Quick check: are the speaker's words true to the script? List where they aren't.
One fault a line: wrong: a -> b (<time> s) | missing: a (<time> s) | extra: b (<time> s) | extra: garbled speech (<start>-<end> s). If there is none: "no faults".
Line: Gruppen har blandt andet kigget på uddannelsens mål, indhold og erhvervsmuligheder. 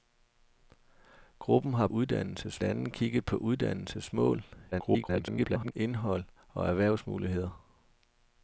wrong: blandt -> uddannelsens (1.9 s)
extra: garbled speech (4.7-5.7 s)